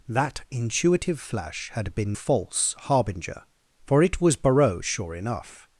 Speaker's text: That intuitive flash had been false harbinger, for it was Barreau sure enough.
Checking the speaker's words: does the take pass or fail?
pass